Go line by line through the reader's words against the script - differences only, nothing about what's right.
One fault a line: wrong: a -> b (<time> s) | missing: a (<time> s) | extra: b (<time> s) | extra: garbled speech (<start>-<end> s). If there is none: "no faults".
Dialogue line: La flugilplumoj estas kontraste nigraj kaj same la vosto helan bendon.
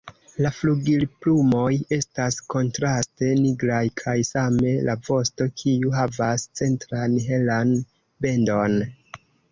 extra: kiu havas centran (5.6 s)